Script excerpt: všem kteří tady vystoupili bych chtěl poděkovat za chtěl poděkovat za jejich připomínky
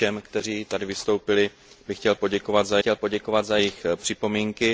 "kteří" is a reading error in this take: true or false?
false